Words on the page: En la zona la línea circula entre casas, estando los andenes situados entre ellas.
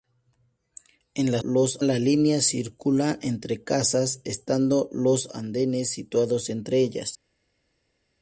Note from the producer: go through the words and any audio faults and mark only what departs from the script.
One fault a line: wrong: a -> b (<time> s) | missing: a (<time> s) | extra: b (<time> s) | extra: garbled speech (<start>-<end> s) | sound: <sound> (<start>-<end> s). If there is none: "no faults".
wrong: zona -> los (1.4 s)